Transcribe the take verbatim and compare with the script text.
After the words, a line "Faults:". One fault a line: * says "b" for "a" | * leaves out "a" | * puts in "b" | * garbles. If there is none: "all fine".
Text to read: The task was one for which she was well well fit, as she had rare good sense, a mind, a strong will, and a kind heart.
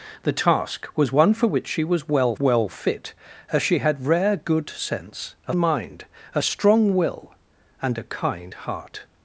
The task was one for which she was well well fit, as she had rare good sense, a mind, a strong will, and a kind heart.
Faults:
all fine